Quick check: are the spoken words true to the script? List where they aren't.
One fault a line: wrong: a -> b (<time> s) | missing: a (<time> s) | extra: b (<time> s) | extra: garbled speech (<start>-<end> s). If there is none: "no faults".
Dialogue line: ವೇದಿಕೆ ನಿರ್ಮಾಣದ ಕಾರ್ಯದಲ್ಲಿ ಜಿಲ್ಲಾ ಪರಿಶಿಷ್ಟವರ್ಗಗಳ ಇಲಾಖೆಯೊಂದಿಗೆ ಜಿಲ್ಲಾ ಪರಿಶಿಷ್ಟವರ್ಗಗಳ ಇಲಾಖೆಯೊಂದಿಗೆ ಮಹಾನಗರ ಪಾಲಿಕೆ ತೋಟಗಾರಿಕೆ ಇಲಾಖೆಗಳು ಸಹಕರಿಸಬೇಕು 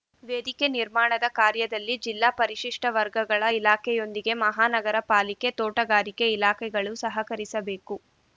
missing: ಜಿಲ್ಲಾ ಪರಿಶಿಷ್ಟವರ್ಗಗಳ ಇಲಾಖೆಯೊಂದಿಗೆ (4.3 s)